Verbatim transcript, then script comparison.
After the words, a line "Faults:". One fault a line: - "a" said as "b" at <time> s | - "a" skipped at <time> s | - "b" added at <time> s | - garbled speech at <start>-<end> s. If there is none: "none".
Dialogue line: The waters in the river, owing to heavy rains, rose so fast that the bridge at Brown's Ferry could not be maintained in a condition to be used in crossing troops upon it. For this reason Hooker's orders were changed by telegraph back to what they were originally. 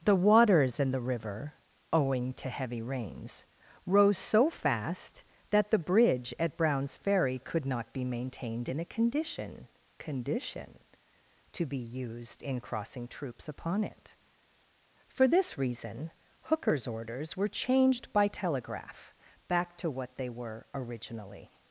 The waters in the river, owing to heavy rains, rose so fast that the bridge at Brown's Ferry could not be maintained in a condition condition to be used in crossing troops upon it. For this reason Hooker's orders were changed by telegraph back to what they were originally.
Faults:
- "condition" added at 10.0 s